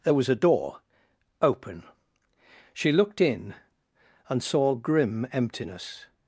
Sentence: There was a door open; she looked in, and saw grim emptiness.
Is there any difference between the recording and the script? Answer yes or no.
no